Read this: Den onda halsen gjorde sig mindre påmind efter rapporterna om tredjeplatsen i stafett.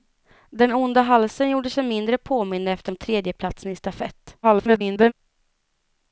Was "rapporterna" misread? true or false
true